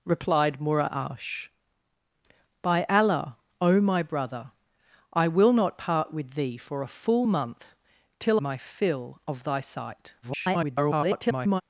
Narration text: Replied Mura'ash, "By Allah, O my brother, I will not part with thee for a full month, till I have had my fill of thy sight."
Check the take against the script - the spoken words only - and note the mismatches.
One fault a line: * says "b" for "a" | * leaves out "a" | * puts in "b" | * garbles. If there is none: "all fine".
* leaves out "I have had"
* garbles